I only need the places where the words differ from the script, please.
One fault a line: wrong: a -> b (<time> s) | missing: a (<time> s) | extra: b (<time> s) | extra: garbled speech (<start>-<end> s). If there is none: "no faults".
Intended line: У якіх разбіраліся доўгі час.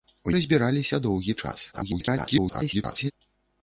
missing: якіх (0.3 s)
extra: garbled speech (1.7-3.1 s)